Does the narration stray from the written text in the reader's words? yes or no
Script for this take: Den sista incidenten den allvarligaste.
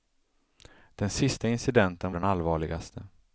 no